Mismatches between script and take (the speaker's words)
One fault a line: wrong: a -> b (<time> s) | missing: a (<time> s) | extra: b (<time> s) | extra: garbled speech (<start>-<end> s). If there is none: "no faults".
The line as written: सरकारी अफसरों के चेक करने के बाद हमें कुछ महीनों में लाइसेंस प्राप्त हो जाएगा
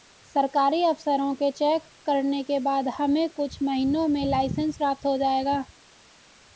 no faults